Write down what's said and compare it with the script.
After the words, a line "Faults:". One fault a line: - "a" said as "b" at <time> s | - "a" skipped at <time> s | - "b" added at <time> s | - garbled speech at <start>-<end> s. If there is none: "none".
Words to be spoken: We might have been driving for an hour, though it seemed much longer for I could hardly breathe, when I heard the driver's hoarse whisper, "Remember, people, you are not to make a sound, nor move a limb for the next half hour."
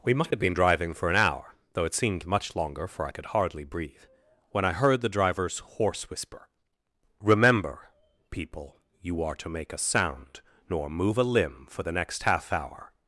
We might have been driving for an hour, though it seemed much longer for I could hardly breathe, when I heard the driver's hoarse whisper, "Remember, people, you are to make a sound, nor move a limb for the next half hour."
Faults:
- "not" skipped at 9.3 s